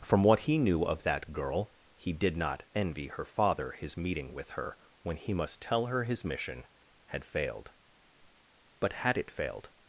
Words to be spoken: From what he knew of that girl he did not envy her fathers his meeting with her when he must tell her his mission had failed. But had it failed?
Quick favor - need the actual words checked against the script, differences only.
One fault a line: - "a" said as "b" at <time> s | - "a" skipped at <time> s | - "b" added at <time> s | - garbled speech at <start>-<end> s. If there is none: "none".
- "fathers" said as "father" at 3.2 s